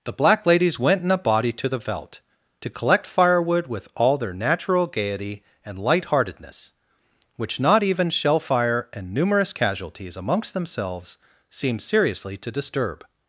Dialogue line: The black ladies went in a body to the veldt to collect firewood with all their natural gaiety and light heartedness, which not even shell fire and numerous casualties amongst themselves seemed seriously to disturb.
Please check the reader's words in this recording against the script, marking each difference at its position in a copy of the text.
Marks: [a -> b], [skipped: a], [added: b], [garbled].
The black ladies went in a body to the veldt to collect firewood with all their natural gaiety and light heartedness, which not even shell fire and numerous casualties amongst themselves seemed seriously to disturb.